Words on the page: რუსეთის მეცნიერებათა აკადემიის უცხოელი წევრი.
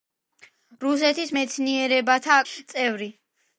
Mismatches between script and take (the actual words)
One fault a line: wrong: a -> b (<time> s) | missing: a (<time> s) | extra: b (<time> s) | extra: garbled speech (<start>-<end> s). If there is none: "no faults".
missing: აკადემიის უცხოელი (2.4 s)